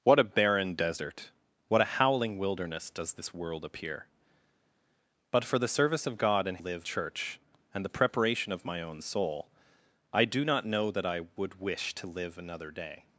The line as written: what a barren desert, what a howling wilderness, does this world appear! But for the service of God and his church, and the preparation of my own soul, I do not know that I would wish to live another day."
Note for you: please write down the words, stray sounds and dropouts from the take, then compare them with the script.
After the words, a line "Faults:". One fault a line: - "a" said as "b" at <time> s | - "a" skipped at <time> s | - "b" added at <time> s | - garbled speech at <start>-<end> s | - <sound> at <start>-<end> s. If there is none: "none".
what a barren desert, what a howling wilderness, does this world appear! But for the service of God and live church, and the preparation of my own soul, I do not know that I would wish to live another day."
Faults:
- "his" said as "live" at 6.6 s